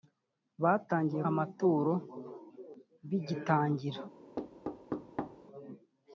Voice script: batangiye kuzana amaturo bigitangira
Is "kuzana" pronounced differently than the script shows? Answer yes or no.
yes